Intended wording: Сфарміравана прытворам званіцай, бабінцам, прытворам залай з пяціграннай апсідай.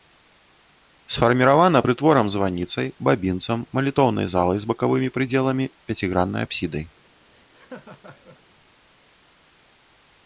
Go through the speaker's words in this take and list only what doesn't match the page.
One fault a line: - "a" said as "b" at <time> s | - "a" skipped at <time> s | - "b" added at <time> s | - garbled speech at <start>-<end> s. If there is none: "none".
- "прытворам" said as "малітоўнай" at 3.8 s
- "бакавымі прыдзеламі" added at 4.7 s